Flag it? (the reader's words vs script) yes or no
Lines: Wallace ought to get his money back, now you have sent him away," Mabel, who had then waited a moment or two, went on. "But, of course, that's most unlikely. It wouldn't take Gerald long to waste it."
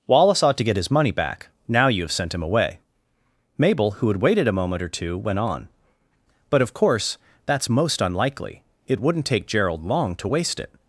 yes